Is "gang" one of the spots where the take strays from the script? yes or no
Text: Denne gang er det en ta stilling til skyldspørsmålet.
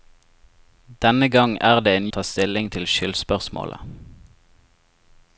no